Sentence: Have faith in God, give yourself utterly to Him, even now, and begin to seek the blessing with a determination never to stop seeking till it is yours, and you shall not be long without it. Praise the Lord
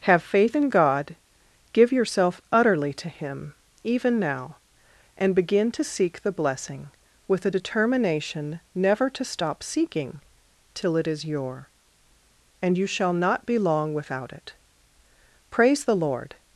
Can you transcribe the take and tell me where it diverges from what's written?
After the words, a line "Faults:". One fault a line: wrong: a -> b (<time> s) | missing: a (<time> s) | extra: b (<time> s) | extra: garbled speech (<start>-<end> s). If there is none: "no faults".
Have faith in God, give yourself utterly to Him, even now, and begin to seek the blessing with a determination never to stop seeking till it is your, and you shall not be long without it. Praise the Lord
Faults:
wrong: yours -> your (11.2 s)